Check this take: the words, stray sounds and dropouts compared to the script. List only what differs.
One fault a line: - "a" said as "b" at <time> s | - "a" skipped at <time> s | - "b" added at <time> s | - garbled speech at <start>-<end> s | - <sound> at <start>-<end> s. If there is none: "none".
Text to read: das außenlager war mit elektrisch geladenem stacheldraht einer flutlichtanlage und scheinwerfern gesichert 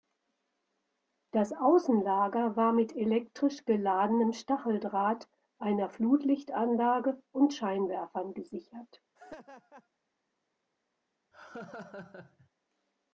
- laugh at 9.2-9.9 s
- laugh at 11.3-12.5 s